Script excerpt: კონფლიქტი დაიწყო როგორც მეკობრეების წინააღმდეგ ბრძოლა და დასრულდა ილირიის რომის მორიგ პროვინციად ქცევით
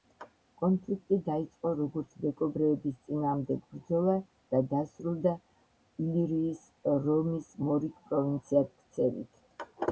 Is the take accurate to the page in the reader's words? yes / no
yes